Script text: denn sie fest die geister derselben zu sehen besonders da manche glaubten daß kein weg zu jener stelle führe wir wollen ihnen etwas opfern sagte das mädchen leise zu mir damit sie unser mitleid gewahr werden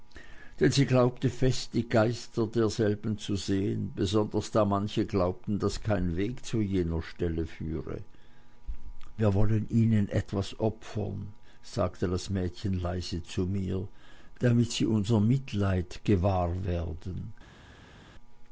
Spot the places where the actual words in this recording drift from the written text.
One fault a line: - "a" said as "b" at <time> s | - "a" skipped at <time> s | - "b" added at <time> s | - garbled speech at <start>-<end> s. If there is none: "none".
- "glaubte" added at 0.9 s